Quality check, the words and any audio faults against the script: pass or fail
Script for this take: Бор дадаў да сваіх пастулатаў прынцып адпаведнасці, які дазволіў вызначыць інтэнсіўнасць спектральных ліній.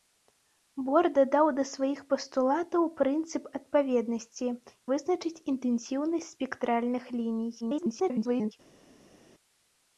fail